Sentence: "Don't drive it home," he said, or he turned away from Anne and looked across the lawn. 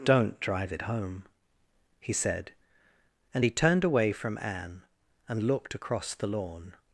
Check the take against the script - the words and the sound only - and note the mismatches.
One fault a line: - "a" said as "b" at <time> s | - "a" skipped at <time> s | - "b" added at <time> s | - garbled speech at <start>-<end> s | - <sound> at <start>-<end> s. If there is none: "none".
- "or" said as "and" at 3.4 s